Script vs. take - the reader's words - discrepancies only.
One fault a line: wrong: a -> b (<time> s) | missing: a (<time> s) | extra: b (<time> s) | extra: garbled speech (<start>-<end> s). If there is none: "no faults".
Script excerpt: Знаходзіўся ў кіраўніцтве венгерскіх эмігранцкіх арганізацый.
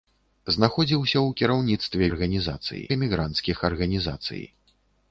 wrong: венгерскіх -> арганізацый (2.1 s)